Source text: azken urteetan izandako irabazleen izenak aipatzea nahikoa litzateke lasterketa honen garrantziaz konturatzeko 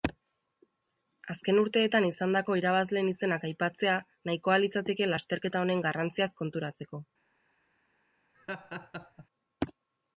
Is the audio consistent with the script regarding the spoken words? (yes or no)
yes